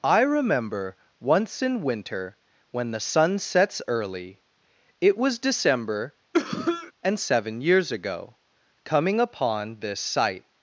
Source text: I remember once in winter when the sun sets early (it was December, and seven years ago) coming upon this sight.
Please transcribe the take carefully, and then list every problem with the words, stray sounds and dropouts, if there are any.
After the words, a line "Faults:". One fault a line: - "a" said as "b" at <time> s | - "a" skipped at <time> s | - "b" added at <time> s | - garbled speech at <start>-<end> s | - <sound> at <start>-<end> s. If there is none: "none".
I remember once in winter when the sun sets early (it was December, and seven years ago) coming upon this sight.
Faults:
- cough at 6.3-6.9 s